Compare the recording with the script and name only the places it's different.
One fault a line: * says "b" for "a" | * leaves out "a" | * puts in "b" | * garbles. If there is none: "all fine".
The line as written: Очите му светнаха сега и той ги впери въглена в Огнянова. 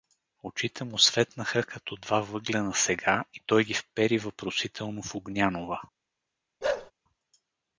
* puts in "като два въглена"
* says "въпросително" for "въглена"